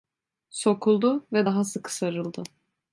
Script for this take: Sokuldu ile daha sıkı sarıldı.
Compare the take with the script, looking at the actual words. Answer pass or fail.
fail